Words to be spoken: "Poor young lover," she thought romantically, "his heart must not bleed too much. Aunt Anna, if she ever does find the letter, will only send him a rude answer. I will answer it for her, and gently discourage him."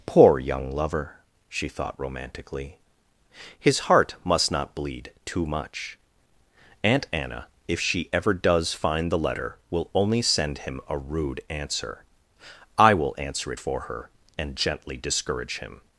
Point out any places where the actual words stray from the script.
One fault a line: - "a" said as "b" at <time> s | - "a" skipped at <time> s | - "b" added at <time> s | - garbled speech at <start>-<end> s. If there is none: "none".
none